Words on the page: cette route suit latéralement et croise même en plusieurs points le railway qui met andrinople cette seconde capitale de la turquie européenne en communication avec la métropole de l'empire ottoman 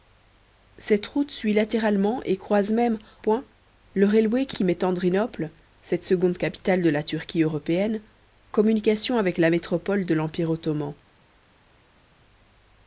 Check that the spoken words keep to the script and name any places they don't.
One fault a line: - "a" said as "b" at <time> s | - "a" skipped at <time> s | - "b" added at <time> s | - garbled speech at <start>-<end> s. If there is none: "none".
- "en plusieurs" skipped at 3.0 s
- "qui" added at 4.5 s
- "en" skipped at 8.0 s